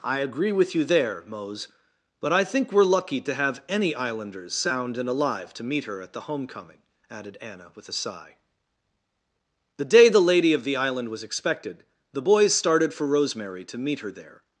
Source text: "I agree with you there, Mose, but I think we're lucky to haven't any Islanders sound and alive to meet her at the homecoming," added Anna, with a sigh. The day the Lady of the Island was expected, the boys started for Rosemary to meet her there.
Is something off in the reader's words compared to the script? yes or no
yes